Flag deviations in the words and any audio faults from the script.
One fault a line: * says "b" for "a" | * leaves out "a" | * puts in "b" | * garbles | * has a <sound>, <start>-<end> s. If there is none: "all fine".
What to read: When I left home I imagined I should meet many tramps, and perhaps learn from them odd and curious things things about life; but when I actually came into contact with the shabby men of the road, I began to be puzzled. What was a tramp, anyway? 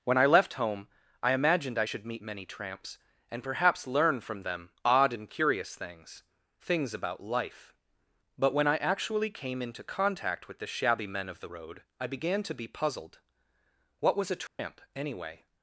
* has a dropout, 14.5-14.6 s